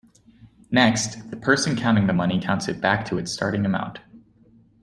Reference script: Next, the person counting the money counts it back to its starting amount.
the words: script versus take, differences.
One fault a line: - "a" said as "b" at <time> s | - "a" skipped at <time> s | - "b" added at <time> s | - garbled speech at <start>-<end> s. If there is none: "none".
none